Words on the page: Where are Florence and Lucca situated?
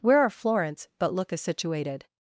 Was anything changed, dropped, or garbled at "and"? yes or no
yes